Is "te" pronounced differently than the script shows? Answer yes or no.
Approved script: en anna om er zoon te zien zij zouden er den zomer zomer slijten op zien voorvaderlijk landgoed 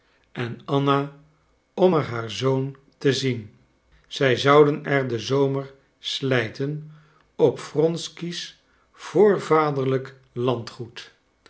no